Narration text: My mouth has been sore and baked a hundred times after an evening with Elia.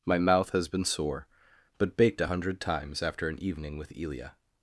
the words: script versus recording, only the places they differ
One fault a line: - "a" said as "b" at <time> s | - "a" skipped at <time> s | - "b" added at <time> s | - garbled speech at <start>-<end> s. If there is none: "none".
- "and" said as "but" at 1.8 s